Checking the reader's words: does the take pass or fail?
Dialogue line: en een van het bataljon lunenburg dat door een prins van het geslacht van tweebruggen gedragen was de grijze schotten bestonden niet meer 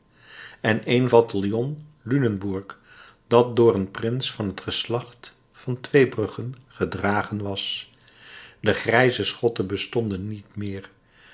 fail